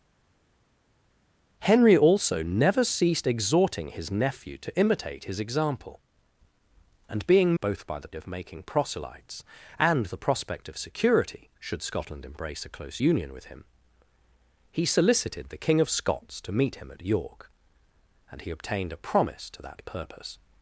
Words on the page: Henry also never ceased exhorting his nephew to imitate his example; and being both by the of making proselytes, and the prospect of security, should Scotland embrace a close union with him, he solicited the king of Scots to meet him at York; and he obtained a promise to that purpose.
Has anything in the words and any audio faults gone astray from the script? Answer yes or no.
no